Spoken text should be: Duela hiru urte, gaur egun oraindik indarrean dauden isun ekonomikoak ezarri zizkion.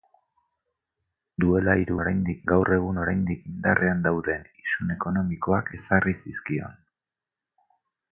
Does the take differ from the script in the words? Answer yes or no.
yes